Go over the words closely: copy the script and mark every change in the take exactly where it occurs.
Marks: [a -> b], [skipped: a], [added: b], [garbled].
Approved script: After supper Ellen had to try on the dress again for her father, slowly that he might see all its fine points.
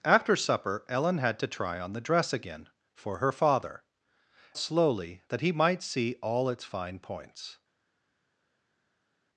After supper Ellen had to try on the dress again for her father, slowly that he might see all its fine points.